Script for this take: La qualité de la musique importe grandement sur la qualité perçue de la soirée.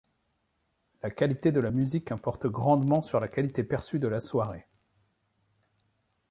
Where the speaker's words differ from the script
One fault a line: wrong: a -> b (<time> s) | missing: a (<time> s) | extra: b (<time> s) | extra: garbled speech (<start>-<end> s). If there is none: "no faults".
no faults